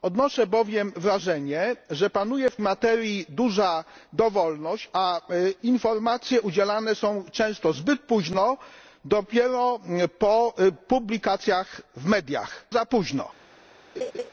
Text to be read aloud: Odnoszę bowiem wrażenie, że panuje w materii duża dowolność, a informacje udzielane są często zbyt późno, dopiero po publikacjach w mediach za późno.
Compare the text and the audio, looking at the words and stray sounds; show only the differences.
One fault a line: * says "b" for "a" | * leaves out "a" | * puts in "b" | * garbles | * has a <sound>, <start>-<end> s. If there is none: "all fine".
* has a laugh, 13.9-14.3 s